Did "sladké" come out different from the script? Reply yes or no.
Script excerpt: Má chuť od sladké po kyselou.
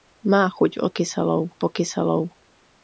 yes